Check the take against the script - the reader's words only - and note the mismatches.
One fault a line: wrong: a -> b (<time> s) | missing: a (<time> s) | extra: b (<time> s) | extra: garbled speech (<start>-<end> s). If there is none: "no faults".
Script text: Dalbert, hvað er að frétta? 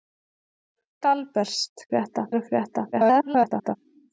wrong: hvað -> frétta (1.9 s)
extra: garbled speech (2.9-3.8 s)